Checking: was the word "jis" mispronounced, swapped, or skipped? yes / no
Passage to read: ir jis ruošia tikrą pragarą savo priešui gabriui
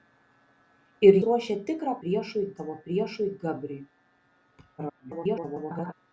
yes